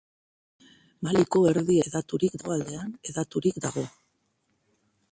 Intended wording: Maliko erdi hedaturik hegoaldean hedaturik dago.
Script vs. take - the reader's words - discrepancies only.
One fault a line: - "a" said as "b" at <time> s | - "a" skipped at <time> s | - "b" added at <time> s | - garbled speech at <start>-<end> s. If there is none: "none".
none